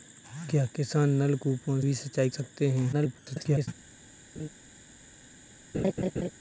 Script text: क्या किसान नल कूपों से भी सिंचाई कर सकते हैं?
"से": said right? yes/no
no